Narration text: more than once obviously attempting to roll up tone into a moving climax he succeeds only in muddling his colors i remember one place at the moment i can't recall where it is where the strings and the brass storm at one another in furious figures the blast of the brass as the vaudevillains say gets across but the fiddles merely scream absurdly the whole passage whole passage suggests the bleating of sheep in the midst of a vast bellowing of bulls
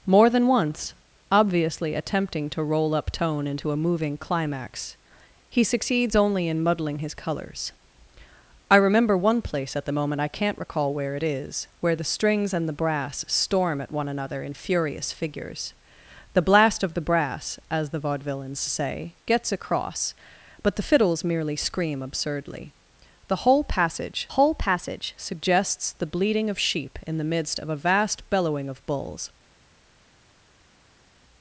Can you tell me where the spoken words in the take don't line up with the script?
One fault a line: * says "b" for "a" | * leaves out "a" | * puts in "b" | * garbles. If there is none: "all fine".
all fine